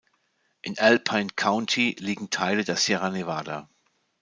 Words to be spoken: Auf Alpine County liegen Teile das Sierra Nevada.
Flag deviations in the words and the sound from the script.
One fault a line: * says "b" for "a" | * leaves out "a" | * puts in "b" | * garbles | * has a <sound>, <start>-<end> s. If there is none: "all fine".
* says "In" for "Auf"
* says "der" for "das"